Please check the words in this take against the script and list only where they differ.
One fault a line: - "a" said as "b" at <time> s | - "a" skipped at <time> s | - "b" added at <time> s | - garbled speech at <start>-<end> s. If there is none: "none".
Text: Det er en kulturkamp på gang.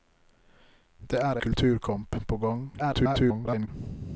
- "en" skipped at 1.4 s
- garbled speech at 2.8-3.7 s